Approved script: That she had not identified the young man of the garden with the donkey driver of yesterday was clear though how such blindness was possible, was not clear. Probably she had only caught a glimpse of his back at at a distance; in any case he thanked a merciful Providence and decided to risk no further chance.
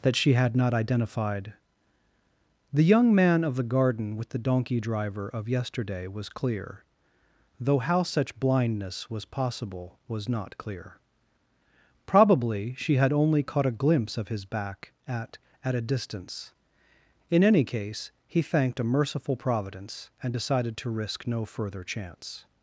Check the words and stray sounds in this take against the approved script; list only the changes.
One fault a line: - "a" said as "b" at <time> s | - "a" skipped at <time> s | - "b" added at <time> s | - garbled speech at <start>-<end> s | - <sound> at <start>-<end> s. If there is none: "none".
none